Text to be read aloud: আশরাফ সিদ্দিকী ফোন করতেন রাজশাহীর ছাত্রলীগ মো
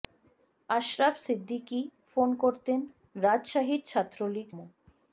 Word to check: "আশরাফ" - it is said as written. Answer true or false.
true